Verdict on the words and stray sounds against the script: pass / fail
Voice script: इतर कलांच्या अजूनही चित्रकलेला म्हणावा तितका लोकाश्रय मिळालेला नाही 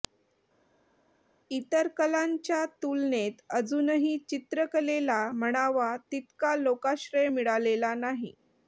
fail